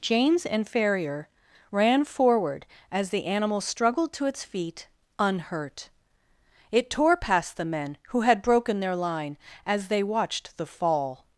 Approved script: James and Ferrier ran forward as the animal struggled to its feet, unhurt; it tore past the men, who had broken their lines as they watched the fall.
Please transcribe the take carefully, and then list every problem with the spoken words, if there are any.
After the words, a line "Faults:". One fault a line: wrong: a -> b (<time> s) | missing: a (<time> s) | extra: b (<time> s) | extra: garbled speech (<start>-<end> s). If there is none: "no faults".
James and Ferrier ran forward as the animal struggled to its feet, unhurt; it tore past the men, who had broken their line as they watched the fall.
Faults:
wrong: lines -> line (8.9 s)